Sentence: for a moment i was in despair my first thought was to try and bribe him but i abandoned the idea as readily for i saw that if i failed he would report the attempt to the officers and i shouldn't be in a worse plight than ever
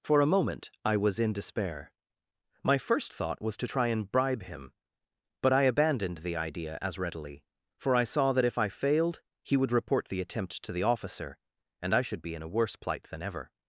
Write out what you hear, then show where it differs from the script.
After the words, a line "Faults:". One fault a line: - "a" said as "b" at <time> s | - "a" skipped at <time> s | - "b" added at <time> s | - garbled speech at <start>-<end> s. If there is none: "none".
for a moment i was in despair my first thought was to try and bribe him but i abandoned the idea as readily for i saw that if i failed he would report the attempt to the officer and i should be in a worse plight than ever
Faults:
- "officers" said as "officer" at 10.8 s
- "shouldn't" said as "should" at 12.0 s